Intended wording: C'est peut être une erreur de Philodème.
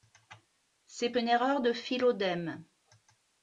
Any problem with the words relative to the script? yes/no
yes